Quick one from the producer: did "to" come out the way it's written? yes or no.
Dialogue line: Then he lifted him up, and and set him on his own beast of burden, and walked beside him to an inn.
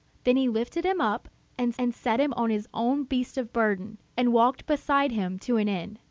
yes